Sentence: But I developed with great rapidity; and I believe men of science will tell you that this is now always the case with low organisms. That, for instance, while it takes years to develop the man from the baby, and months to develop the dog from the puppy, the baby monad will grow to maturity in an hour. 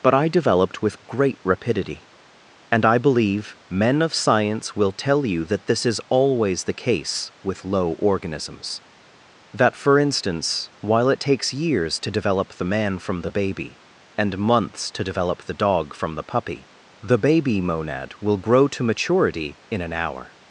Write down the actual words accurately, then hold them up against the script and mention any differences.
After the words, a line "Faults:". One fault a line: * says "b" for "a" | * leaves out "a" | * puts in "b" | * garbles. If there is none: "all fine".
But I developed with great rapidity; and I believe men of science will tell you that this is always the case with low organisms. That, for instance, while it takes years to develop the man from the baby, and months to develop the dog from the puppy, the baby monad will grow to maturity in an hour.
Faults:
* leaves out "now"